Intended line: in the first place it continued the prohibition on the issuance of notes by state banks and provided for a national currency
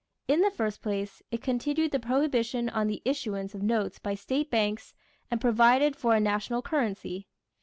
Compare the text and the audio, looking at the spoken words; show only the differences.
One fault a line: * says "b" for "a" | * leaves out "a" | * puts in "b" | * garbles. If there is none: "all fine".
all fine